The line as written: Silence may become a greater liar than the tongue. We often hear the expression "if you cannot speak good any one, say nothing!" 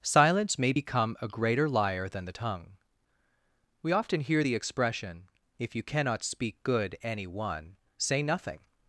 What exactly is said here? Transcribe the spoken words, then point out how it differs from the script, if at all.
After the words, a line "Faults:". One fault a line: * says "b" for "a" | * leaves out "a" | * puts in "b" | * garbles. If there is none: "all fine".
Silence may become a greater liar than the tongue. We often hear the expression "if you cannot speak good any one, say nothing!"
Faults:
all fine